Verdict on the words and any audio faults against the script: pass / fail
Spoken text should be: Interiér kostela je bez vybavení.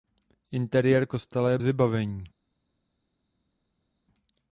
fail